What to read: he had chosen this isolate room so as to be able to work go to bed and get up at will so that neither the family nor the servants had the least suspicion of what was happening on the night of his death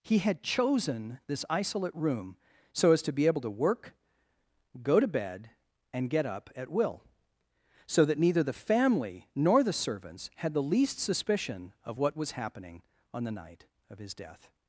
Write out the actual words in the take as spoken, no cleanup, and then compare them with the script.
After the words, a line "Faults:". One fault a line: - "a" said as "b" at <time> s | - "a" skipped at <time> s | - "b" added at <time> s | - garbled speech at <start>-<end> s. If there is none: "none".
he had chosen this isolate room so as to be able to work go to bed and get up at will so that neither the family nor the servants had the least suspicion of what was happening on the night of his death
Faults:
none